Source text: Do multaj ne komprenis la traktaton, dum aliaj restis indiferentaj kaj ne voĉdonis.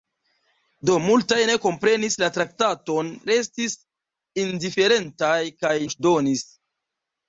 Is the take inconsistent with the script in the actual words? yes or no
yes